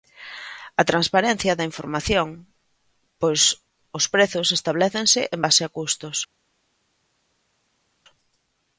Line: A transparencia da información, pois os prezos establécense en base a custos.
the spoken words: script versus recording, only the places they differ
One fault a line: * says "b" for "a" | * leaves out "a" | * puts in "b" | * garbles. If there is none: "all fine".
all fine